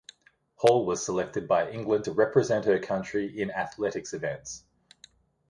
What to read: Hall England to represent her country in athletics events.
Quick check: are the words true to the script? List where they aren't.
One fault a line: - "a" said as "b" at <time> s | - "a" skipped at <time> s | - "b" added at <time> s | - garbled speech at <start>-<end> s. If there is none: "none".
- "was selected by" added at 0.9 s